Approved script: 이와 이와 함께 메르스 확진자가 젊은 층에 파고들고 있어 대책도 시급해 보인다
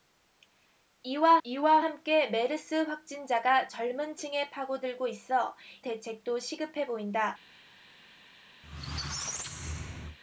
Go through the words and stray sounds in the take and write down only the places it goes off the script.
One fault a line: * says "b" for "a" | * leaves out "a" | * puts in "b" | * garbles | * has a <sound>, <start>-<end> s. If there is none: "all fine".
* has a squeak, 8.6-10.2 s